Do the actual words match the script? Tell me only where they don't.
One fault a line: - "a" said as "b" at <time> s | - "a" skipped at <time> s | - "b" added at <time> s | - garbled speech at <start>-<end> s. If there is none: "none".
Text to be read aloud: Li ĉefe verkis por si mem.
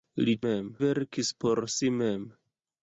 - "ĉefe" said as "mem" at 0.5 s